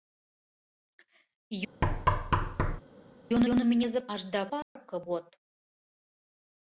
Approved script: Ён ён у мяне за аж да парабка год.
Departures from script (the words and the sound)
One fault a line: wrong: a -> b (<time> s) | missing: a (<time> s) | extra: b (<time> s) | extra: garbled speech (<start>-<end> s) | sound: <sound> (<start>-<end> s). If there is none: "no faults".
sound: thud (1.8-2.8 s)
sound: dropout (4.6-4.8 s)